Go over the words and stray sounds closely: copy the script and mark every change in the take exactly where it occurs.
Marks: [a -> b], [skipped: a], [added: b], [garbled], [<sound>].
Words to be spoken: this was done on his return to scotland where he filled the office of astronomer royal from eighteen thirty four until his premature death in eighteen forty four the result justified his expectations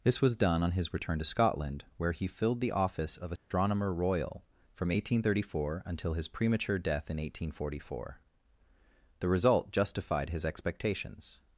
this was done on his return to scotland where he filled the office of astronomer [dropout] royal from eighteen thirty four until his premature death in eighteen forty four the result justified his expectations